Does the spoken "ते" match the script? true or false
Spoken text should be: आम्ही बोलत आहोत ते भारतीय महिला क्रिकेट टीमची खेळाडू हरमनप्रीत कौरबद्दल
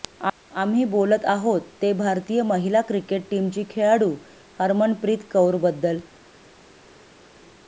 true